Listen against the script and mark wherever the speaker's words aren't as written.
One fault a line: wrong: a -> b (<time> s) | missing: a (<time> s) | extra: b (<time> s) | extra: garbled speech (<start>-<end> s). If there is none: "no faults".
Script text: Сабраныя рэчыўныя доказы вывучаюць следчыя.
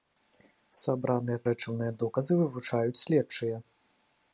no faults